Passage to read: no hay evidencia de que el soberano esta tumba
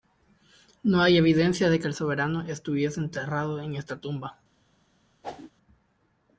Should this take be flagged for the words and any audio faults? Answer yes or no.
yes